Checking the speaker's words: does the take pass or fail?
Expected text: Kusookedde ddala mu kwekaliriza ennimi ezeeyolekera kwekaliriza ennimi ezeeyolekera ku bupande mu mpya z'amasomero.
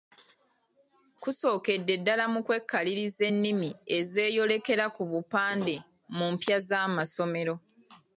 fail